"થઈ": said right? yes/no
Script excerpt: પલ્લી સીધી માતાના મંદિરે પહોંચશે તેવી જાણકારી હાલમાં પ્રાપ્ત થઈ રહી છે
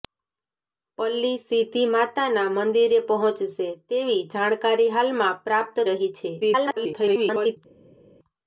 no